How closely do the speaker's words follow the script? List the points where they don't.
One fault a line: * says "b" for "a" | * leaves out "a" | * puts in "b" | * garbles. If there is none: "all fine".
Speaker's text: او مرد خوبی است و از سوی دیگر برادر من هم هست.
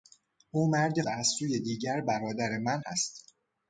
* leaves out "خوبی است"
* leaves out "هم"